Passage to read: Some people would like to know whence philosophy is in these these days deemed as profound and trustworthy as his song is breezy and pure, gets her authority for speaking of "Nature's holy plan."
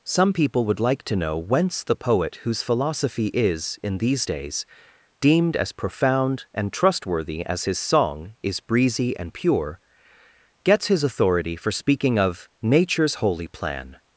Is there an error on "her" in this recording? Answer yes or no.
yes